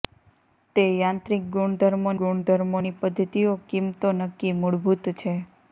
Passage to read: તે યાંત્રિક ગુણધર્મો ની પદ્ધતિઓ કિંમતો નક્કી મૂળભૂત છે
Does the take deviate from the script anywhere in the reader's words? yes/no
yes